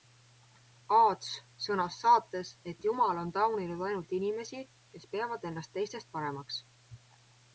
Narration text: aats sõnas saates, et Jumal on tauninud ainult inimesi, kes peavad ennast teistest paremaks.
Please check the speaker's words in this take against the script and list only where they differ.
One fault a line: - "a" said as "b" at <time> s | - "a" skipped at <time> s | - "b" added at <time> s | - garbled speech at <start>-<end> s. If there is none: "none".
none